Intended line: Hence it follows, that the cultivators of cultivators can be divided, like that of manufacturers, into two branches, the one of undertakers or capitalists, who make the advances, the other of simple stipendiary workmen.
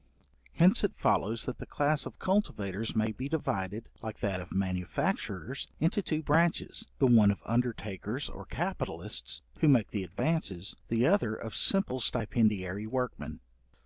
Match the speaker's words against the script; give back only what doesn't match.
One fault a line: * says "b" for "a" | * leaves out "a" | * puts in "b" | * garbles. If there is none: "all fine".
* says "class" for "cultivators"
* says "may" for "can"